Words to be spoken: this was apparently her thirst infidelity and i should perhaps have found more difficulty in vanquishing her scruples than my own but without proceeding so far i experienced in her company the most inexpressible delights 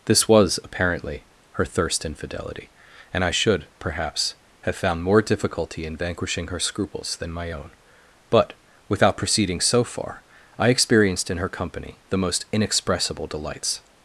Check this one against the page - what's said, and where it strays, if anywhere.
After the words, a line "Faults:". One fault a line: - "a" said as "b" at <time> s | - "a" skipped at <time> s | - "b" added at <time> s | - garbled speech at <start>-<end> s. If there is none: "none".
this was apparently her thirst infidelity and i should perhaps have found more difficulty in vanquishing her scruples than my own but without proceeding so far i experienced in her company the most inexpressible delights
Faults:
none